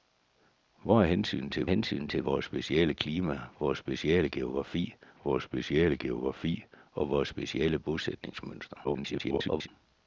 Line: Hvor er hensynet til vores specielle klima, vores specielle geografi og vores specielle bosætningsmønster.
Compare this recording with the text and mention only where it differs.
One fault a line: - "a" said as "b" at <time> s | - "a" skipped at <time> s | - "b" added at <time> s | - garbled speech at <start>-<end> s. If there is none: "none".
- "hensynet til" added at 1.7 s
- "vores specielle geografi" added at 5.2 s
- garbled speech at 8.8-9.7 s